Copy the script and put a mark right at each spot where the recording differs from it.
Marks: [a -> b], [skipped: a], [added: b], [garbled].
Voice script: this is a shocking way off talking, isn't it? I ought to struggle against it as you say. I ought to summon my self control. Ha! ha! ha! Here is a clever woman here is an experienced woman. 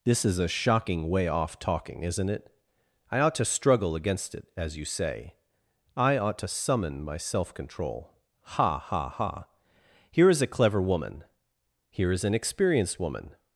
this is a shocking way off talking, isn't it? I ought to struggle against it as you say. I ought to summon my self control. Ha! ha! ha! Here is a clever woman here is an experienced woman.